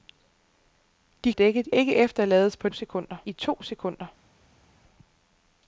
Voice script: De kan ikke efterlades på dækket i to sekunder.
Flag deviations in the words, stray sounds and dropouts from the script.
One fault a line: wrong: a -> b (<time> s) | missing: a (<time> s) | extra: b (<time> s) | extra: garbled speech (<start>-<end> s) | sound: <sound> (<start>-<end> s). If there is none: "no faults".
wrong: kan -> dækket (1.3 s)
wrong: dækket -> sekunder (2.7 s)